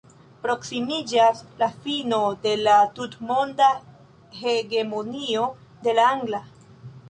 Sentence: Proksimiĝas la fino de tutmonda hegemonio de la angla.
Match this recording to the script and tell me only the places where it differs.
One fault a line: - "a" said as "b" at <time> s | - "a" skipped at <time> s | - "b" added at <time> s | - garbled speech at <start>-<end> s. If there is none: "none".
- "la" added at 2.7 s